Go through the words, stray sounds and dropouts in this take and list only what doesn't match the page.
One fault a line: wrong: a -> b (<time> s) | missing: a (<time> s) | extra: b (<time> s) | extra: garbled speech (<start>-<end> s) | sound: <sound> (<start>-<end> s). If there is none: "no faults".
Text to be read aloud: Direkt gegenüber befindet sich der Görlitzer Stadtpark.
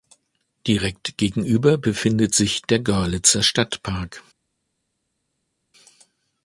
no faults